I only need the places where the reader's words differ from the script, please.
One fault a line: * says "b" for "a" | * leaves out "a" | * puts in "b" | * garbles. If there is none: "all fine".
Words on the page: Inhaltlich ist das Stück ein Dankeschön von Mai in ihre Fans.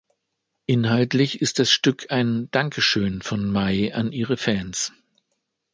* says "an" for "in"